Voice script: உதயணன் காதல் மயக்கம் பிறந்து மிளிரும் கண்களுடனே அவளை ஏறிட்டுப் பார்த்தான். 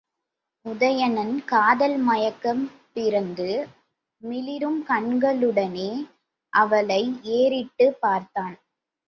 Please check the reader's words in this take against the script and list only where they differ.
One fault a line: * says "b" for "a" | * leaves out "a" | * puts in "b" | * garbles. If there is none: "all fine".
all fine